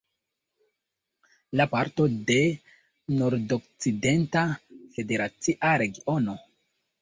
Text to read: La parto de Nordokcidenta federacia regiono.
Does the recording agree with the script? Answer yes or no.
yes